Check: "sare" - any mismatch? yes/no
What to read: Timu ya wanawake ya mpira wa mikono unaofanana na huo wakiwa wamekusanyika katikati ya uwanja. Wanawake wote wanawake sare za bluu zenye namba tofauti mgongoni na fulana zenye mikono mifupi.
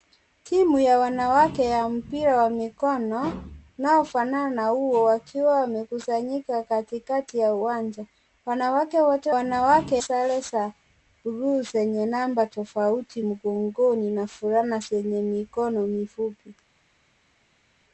no